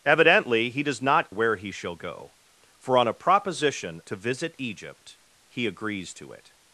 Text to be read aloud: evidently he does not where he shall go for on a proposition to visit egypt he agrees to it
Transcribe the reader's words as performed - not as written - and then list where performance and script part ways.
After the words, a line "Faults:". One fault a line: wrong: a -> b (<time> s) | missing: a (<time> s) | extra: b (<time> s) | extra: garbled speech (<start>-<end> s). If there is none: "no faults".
evidently he does not where he shall go for on a proposition to visit egypt he agrees to it
Faults:
no faults